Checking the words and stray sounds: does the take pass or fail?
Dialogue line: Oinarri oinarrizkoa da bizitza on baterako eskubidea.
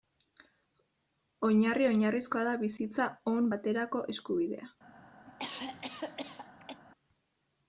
fail